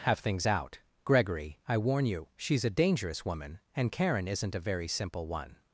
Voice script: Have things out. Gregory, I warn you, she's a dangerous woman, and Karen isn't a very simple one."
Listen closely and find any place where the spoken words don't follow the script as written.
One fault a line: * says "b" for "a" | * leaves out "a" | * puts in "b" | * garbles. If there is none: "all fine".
all fine